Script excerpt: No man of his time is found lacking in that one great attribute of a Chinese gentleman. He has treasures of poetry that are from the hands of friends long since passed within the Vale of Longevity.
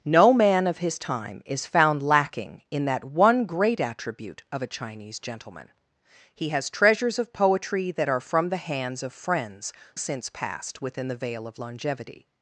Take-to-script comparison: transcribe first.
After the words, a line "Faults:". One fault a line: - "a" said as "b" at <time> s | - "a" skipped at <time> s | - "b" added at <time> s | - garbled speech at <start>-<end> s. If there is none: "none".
No man of his time is found lacking in that one great attribute of a Chinese gentleman. He has treasures of poetry that are from the hands of friends since passed within the Vale of Longevity.
Faults:
- "long" skipped at 9.7 s